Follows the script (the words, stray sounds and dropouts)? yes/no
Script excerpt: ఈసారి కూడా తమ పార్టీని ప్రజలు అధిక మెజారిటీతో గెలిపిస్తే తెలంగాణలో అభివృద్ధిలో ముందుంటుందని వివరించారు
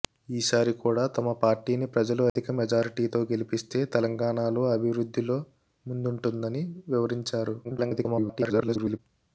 no